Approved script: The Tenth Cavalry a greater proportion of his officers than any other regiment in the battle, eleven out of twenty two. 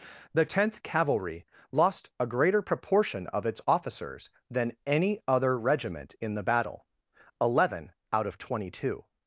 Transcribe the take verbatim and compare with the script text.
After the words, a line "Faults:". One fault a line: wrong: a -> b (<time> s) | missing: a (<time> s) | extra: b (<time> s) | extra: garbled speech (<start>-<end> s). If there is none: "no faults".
The Tenth Cavalry lost a greater proportion of its officers than any other regiment in the battle, eleven out of twenty two.
Faults:
extra: lost (1.7 s)
wrong: his -> its (3.5 s)